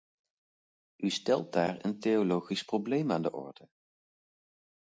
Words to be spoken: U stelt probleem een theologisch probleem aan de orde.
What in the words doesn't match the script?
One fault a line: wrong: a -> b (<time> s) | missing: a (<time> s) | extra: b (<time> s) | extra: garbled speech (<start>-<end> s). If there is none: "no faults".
wrong: probleem -> daar (1.5 s)